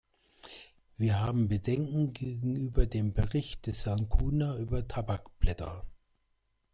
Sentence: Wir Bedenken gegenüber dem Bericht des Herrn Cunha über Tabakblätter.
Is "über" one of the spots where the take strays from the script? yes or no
no